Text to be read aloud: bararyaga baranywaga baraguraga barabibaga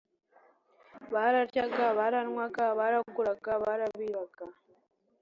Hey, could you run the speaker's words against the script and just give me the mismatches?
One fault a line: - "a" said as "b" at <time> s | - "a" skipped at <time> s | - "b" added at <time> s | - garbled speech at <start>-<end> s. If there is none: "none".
none